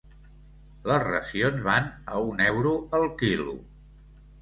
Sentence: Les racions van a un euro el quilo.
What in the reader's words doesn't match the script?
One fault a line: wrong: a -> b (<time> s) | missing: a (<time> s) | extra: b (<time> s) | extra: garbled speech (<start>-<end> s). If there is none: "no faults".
no faults